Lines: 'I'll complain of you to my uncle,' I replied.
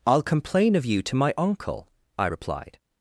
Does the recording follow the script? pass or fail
pass